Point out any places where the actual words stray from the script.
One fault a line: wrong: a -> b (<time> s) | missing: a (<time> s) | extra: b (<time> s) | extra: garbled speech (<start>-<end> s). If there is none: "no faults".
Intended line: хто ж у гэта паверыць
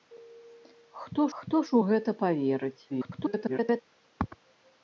extra: хто (1.4 s)
extra: garbled speech (2.9-3.8 s)